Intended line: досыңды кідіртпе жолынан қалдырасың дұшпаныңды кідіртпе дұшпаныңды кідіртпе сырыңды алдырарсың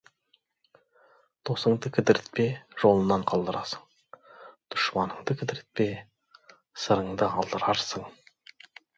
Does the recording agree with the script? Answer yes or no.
no